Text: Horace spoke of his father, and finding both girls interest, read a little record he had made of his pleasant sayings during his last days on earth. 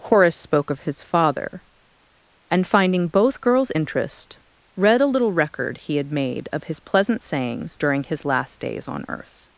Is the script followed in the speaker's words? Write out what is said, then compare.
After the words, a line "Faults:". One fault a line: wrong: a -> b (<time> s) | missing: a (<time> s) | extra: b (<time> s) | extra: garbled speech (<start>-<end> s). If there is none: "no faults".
Horace spoke of his father, and finding both girls interest, read a little record he had made of his pleasant sayings during his last days on earth.
Faults:
no faults